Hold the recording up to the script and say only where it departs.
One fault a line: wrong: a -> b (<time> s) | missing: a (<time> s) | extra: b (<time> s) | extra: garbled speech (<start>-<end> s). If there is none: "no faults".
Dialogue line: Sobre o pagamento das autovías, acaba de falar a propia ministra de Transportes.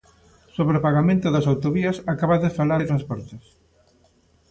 missing: a propia ministra (2.8 s)